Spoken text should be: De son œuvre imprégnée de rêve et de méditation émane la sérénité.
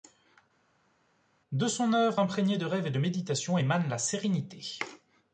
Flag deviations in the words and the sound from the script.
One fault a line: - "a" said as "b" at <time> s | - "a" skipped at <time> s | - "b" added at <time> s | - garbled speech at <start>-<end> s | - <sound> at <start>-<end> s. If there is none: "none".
none